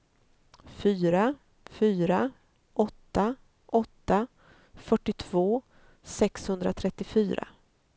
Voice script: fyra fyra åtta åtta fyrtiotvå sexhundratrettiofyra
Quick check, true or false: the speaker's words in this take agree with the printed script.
true